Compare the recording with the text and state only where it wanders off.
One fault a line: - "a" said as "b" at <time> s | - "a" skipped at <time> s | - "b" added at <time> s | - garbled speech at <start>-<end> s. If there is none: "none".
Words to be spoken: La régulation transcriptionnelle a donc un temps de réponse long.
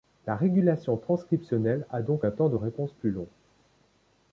- "plus" added at 3.0 s